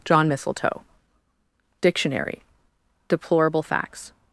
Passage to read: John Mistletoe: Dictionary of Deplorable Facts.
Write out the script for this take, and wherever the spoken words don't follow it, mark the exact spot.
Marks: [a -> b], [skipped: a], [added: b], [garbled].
John Mistletoe: Dictionary [skipped: of] Deplorable Facts.